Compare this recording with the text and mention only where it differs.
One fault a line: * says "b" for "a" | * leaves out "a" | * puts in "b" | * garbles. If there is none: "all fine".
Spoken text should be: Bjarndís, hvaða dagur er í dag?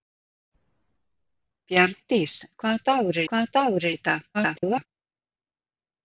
* puts in "hvaða dagur"
* garbles